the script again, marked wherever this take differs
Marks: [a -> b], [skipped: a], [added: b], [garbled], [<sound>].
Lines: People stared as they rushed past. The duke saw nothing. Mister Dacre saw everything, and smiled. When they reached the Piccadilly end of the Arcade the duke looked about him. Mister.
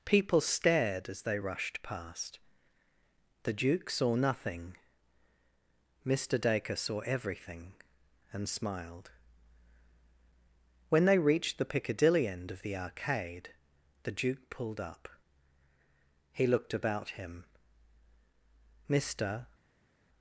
People stared as they rushed past. The duke saw nothing. Mister Dacre saw everything, and smiled. When they reached the Piccadilly end of the Arcade the duke [added: pulled up He] looked about him. Mister.